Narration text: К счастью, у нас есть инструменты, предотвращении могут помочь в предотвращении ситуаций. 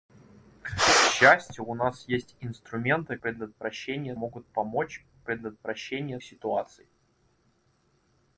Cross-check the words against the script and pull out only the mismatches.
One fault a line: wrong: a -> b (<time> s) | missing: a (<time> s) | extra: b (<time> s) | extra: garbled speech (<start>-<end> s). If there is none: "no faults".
no faults